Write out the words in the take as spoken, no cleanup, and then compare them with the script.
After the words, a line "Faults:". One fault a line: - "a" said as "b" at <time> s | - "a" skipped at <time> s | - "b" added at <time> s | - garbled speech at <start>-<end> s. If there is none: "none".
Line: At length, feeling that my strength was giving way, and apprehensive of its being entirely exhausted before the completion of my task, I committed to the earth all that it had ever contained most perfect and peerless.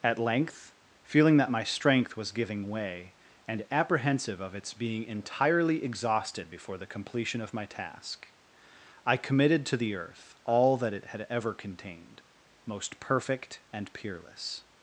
At length, feeling that my strength was giving way, and apprehensive of its being entirely exhausted before the completion of my task, I committed to the earth all that it had ever contained most perfect and peerless.
Faults:
none